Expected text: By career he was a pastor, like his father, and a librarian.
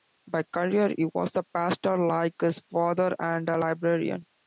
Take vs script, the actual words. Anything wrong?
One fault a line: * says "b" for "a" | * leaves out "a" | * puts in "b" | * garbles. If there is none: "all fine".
all fine